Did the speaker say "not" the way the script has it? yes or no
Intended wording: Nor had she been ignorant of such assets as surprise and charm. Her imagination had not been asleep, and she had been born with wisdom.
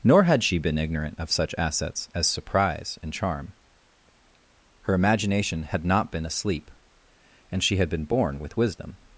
yes